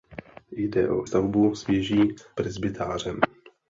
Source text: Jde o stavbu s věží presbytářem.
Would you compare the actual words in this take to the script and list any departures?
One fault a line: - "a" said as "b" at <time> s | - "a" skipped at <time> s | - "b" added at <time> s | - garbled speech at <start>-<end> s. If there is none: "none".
none